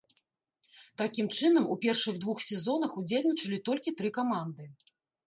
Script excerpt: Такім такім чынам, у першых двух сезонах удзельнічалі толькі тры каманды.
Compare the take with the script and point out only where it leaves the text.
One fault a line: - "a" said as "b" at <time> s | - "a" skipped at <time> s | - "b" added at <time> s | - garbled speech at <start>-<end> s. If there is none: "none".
- "такім" skipped at 1.3 s